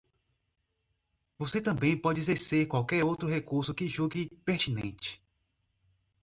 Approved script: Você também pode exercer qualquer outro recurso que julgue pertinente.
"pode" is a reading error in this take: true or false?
false